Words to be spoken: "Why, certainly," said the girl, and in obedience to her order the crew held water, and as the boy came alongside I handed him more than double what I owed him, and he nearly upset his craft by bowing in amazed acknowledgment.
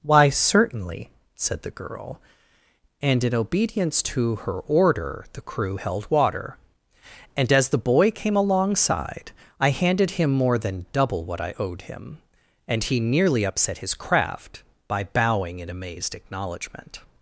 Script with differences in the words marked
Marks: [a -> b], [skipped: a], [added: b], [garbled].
"Why, certainly," said the girl, and in obedience to her order the crew held water, and as the boy came alongside I handed him more than double what I owed him, and he nearly upset his craft by bowing in amazed acknowledgment.